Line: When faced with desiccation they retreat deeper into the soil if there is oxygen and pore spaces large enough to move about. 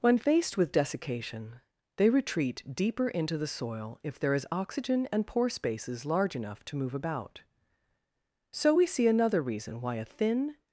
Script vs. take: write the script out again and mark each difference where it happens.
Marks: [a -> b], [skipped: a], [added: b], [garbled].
When faced with desiccation they retreat deeper into the soil if there is oxygen and pore spaces large enough to move about. [added: So we see another reason why a thin]